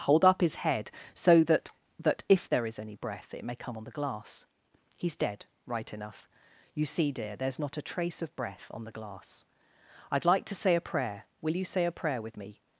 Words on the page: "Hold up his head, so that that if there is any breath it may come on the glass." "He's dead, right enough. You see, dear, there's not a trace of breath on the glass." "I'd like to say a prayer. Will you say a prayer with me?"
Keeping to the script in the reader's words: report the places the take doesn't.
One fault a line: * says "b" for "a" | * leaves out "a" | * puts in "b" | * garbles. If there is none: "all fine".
all fine